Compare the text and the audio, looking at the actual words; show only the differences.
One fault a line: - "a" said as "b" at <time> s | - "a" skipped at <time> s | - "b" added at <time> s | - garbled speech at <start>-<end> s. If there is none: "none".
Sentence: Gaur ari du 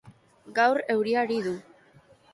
- "euria" added at 0.9 s